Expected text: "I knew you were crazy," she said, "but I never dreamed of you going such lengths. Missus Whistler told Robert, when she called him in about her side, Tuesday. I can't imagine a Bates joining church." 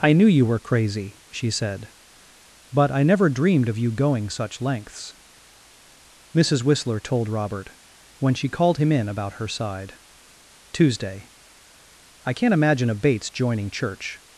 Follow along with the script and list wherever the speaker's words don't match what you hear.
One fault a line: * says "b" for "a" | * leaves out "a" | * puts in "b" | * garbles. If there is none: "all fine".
all fine